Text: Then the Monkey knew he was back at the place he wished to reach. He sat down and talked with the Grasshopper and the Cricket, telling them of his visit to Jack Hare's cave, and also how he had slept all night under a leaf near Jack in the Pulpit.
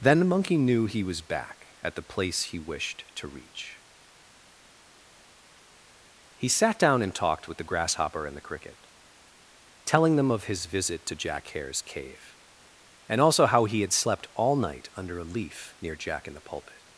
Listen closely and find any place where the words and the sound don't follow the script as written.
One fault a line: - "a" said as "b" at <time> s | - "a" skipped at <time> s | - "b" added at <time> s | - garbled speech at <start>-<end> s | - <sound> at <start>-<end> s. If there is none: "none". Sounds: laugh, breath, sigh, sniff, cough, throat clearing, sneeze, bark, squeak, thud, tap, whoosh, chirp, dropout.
none